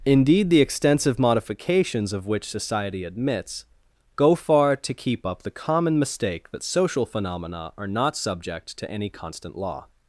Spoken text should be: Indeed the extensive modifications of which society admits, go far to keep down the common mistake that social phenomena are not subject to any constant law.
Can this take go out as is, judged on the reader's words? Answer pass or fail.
fail